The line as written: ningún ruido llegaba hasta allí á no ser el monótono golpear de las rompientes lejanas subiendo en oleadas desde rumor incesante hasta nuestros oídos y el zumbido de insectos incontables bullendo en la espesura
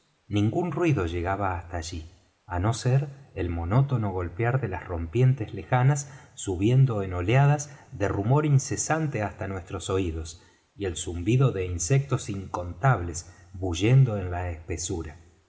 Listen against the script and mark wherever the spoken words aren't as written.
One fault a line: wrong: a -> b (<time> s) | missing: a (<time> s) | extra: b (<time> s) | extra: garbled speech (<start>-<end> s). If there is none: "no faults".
wrong: desde -> de (7.9 s)